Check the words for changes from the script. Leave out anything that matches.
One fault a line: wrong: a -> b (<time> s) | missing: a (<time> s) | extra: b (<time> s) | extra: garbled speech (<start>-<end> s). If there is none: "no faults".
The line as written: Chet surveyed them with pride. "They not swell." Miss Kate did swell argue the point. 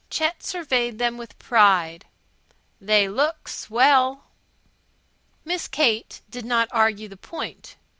wrong: not -> look (3.1 s)
wrong: swell -> not (6.4 s)